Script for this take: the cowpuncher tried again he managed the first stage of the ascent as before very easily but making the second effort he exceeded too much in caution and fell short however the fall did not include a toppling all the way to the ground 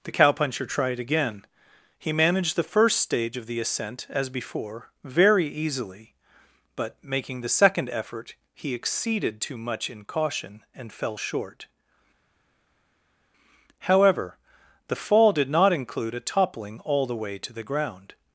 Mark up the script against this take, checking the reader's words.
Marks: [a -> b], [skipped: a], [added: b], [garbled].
the cowpuncher tried again he managed the first stage of the ascent as before very easily but making the second effort he exceeded too much in caution and fell short however the fall did not include a toppling all the way to the ground